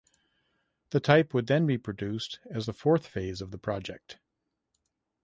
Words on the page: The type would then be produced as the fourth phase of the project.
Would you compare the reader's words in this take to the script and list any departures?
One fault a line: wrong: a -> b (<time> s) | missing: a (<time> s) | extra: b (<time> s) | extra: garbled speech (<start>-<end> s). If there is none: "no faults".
no faults